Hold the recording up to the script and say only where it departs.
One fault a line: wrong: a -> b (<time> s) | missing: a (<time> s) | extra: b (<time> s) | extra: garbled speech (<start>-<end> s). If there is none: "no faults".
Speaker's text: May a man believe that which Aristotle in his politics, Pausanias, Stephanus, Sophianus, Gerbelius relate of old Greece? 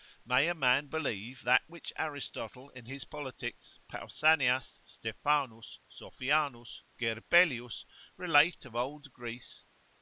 no faults